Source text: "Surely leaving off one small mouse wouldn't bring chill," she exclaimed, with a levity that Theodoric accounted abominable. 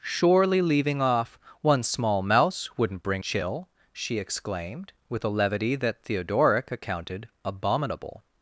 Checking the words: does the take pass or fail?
pass